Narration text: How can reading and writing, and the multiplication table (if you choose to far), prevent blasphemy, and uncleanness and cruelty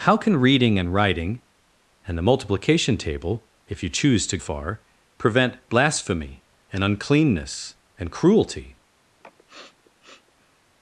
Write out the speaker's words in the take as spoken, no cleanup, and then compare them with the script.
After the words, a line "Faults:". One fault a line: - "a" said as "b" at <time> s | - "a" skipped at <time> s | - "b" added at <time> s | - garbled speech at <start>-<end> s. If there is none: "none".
How can reading and writing, and the multiplication table (if you choose to far), prevent blasphemy, and uncleanness and cruelty
Faults:
none